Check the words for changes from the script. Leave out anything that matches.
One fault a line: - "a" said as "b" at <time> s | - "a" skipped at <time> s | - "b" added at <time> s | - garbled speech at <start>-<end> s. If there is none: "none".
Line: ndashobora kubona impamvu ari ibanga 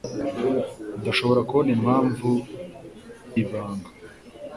- "ari" skipped at 2.3 s